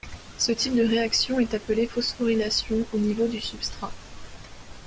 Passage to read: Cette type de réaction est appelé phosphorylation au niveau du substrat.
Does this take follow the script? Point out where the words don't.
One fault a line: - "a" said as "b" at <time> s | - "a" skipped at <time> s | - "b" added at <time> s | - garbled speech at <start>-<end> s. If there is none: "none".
- "Cette" said as "Ce" at 0.4 s